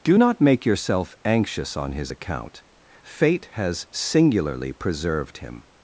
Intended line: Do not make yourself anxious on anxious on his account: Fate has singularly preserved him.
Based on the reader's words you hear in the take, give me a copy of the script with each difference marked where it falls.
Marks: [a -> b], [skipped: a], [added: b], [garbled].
Do not make yourself anxious on [skipped: anxious on] his account: Fate has singularly preserved him.